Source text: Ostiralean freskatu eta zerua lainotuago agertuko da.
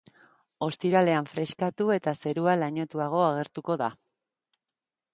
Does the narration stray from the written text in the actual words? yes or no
no